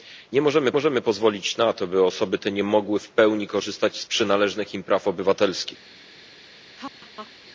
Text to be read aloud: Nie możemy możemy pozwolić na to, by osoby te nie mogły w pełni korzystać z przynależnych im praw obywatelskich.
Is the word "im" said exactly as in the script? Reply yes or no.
yes